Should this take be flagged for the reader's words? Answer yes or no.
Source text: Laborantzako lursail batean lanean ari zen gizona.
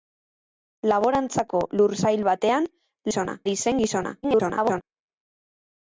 yes